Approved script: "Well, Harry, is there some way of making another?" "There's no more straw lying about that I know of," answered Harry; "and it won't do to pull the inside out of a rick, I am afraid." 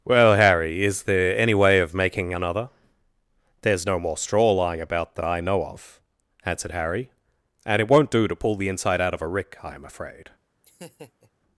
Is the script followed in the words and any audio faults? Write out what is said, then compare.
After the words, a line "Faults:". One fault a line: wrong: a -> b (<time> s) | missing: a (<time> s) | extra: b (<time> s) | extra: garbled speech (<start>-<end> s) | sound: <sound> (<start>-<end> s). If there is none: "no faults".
"Well, Harry, is there any way of making another?" "There's no more straw lying about that I know of," answered Harry; "and it won't do to pull the inside out of a rick, I am afraid."
Faults:
wrong: some -> any (1.4 s)
sound: laugh (10.6-11.3 s)